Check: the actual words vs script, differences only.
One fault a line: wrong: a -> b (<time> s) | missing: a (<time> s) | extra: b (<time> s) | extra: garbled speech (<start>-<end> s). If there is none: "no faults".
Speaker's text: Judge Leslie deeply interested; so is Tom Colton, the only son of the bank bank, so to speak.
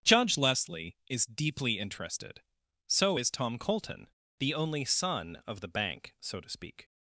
extra: is (1.1 s)
missing: bank (6.1 s)